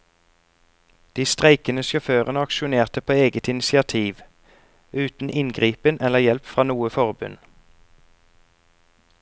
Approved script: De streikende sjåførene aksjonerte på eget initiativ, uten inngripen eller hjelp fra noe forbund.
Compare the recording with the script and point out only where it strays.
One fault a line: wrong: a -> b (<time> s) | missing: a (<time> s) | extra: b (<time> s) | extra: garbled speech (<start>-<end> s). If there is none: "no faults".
no faults